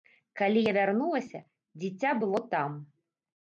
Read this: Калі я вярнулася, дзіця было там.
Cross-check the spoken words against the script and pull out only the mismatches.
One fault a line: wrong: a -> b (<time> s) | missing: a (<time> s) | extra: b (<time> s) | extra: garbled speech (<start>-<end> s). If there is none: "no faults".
no faults